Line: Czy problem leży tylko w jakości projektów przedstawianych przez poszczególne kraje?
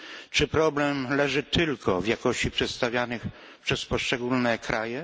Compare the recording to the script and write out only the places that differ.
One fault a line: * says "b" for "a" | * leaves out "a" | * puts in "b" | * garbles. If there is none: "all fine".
* leaves out "projektów"